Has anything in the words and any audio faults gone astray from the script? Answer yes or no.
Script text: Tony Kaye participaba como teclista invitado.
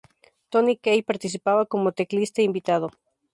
no